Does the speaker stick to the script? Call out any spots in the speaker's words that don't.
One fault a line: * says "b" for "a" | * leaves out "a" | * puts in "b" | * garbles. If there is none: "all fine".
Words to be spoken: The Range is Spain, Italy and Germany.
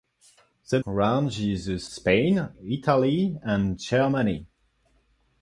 all fine